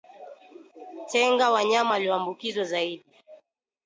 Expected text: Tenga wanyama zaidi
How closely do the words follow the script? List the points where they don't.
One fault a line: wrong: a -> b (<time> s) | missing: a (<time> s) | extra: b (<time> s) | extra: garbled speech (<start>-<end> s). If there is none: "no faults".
extra: walioambukizwa (1.9 s)